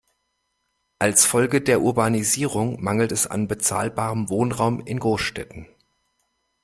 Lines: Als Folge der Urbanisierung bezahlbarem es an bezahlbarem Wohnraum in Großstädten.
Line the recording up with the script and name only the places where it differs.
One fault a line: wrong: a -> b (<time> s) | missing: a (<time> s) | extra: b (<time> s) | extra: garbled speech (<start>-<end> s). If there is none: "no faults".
wrong: bezahlbarem -> mangelt (2.8 s)